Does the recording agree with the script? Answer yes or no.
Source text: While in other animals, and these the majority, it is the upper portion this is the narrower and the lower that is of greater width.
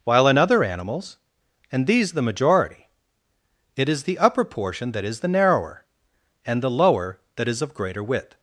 no